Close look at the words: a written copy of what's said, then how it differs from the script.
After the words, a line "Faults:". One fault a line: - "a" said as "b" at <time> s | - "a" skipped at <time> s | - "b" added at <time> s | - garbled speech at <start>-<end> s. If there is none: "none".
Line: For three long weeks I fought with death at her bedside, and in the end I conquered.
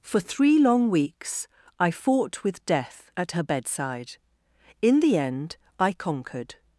For three long weeks I fought with death at her bedside, in the end I conquered.
Faults:
- "and" skipped at 4.2 s